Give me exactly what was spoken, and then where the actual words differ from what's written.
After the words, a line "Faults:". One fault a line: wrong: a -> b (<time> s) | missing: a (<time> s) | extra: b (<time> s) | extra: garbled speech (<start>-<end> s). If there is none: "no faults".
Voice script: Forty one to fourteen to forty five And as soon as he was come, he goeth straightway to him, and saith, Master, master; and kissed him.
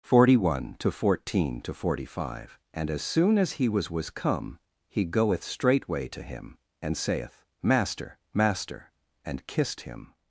Forty one to fourteen to forty five And as soon as he was was come, he goeth straightway to him, and saith, Master, master; and kissed him.
Faults:
extra: was (3.9 s)